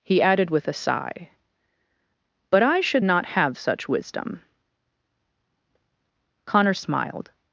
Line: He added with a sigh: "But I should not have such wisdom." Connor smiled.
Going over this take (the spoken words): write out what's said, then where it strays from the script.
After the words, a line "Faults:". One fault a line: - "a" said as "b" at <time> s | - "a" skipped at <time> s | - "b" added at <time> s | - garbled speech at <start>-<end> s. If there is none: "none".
He added with a sigh: "But I should not have such wisdom." Connor smiled.
Faults:
none